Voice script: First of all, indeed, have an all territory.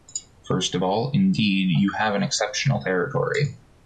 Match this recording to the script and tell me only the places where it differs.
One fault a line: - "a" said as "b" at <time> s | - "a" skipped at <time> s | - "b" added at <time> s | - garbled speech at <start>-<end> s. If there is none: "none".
- "you" added at 1.8 s
- "all" said as "exceptional" at 2.2 s